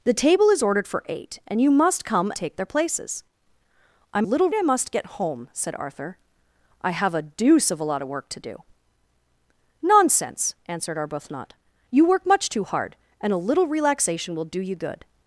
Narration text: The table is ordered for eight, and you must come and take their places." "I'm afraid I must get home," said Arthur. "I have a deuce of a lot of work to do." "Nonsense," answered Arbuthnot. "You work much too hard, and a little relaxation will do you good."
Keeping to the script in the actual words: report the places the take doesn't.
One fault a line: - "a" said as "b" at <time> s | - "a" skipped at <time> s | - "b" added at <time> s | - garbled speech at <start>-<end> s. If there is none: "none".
- "and" skipped at 2.3 s
- "afraid" said as "little" at 4.2 s